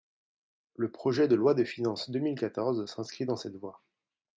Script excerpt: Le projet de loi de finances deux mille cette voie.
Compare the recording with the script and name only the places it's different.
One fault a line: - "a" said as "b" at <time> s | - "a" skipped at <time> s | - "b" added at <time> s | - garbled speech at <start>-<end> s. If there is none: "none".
- "quatorze s'inscrit dans" added at 2.4 s